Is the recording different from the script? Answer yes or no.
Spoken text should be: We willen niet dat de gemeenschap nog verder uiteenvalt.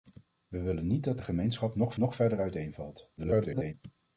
yes